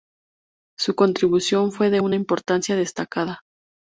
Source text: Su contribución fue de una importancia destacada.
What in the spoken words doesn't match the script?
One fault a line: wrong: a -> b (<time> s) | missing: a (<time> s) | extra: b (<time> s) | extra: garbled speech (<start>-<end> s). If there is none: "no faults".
no faults